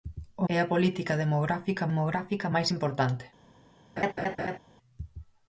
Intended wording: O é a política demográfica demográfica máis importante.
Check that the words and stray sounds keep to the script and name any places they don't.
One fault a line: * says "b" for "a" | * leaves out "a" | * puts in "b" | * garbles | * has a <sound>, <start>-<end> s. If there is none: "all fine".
* has a laugh, 4.0-4.6 s